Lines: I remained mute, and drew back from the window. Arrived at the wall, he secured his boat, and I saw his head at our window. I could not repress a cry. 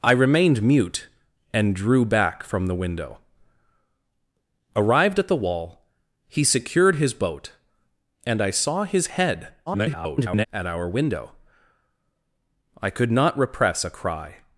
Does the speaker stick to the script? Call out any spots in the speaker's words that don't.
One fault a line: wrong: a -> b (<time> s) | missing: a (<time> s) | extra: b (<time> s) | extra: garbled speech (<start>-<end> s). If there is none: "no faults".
extra: garbled speech (9.7-10.5 s)